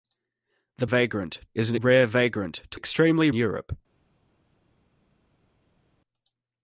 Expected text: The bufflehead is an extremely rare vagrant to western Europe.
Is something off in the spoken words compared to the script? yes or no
yes